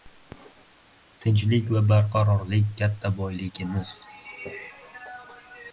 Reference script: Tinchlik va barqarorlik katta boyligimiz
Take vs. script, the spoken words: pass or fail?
pass